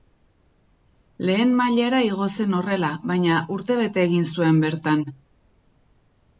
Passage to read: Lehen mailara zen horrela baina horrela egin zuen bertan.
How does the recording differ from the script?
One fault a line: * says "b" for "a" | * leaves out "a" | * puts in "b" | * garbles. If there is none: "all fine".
* puts in "igo"
* says "urtebete" for "horrela"